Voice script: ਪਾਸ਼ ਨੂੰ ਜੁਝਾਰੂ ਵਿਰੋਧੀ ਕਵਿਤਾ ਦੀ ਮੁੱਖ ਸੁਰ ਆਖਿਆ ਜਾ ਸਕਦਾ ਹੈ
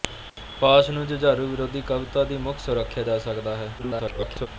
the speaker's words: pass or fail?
fail